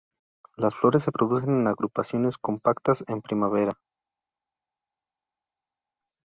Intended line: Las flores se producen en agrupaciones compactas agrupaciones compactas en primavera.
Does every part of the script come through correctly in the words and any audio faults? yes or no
no